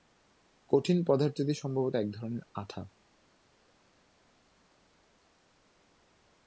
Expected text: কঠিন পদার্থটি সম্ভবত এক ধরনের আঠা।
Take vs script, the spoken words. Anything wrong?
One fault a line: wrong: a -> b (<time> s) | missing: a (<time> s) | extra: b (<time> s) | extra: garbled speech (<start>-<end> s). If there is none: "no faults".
no faults